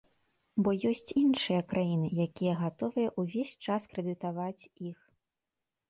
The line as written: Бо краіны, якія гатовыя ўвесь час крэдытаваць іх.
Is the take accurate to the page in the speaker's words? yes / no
no